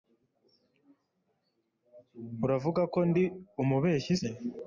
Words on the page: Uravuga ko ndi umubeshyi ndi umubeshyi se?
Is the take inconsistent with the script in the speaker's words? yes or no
yes